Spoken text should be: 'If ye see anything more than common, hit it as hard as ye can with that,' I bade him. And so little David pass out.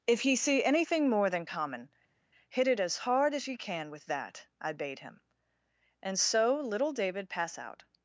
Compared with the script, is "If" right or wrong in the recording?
right